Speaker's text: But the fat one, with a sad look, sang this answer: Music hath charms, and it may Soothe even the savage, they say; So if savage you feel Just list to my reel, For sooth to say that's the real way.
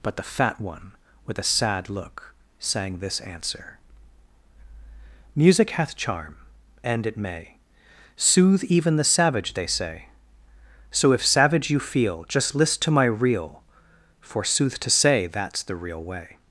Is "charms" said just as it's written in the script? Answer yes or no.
no